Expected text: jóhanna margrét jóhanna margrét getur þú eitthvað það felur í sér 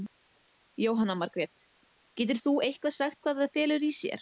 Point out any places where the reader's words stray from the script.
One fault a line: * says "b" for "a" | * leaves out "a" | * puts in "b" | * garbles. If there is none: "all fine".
* leaves out "jóhanna margrét"
* puts in "sagt hvað"